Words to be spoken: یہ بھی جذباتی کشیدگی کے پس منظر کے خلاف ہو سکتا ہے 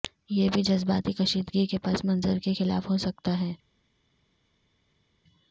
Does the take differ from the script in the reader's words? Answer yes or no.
no